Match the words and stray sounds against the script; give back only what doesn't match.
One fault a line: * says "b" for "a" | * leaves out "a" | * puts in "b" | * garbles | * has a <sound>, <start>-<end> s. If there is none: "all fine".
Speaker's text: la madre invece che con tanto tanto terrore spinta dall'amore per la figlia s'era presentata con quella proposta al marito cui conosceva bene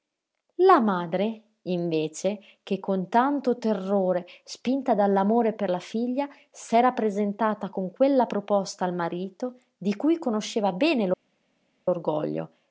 * leaves out "tanto"
* puts in "di"